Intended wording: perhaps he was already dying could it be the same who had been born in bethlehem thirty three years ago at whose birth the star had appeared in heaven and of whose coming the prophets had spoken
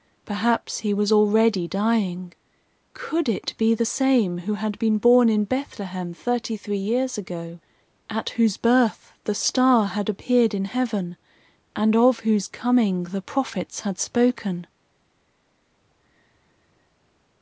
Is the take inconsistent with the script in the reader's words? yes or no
no